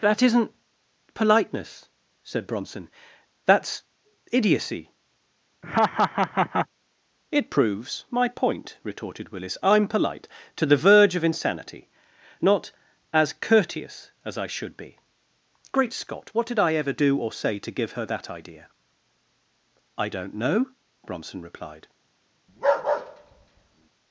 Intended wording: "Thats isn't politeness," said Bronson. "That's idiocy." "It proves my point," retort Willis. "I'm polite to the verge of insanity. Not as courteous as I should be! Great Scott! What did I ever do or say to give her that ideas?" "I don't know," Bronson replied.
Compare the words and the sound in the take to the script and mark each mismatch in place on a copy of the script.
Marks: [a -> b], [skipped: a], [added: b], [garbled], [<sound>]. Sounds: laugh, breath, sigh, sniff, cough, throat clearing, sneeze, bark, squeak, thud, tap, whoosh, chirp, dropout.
["Thats -> That] isn't politeness," said Bronson. "That's idiocy." [laugh] "It proves my point," [retort -> retorted] Willis. "I'm polite to the verge of insanity. Not as courteous as I should be! Great Scott! What did I ever do or say to give her that [ideas?" -> idea] "I don't know," Bronson replied. [bark]